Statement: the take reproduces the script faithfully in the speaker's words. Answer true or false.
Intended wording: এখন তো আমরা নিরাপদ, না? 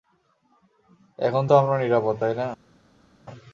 false